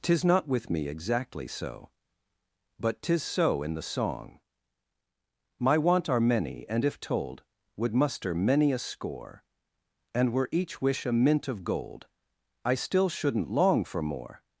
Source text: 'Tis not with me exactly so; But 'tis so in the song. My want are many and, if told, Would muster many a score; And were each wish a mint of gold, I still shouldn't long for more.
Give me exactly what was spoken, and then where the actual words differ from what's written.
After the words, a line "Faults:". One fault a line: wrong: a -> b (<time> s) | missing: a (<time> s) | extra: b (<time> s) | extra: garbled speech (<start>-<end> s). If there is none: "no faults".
'Tis not with me exactly so; But 'tis so in the song. My want are many and, if told, Would muster many a score; And were each wish a mint of gold, I still shouldn't long for more.
Faults:
no faults